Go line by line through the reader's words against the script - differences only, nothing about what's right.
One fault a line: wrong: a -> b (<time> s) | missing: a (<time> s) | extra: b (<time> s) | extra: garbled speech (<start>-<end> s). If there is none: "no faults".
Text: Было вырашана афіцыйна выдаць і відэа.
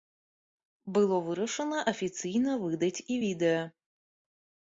no faults